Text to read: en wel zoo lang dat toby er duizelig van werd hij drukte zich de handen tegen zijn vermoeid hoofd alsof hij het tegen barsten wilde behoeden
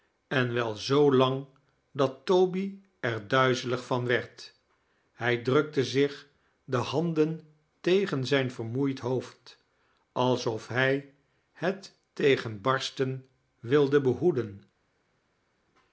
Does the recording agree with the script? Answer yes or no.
yes